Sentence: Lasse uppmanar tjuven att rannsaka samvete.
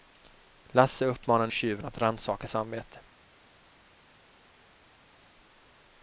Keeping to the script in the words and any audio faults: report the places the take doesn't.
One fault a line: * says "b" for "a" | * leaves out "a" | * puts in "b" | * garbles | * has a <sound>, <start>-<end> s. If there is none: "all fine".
all fine